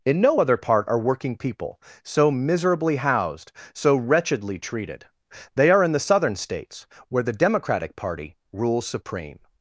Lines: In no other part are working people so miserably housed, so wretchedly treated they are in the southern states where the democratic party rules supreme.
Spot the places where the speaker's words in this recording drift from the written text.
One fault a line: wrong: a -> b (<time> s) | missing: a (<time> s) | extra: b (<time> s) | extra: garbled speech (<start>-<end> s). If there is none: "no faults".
no faults